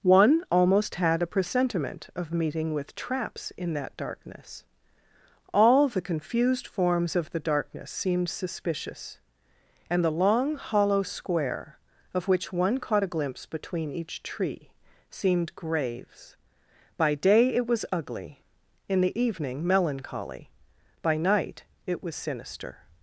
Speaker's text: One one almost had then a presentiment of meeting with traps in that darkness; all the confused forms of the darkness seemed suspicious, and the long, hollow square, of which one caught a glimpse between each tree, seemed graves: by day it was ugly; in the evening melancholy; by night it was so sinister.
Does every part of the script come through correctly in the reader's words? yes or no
no